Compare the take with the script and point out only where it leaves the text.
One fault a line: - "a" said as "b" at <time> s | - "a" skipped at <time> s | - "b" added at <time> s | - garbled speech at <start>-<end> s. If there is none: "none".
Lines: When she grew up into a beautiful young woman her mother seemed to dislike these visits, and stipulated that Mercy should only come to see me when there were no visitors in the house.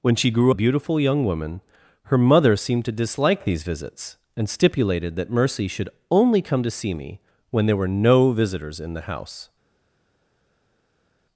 - "up into" skipped at 0.5 s